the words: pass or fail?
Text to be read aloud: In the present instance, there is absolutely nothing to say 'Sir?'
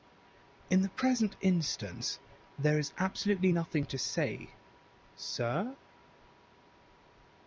pass